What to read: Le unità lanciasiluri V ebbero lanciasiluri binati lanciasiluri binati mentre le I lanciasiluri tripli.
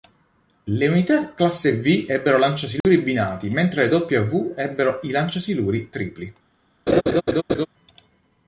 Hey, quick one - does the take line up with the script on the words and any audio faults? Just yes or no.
no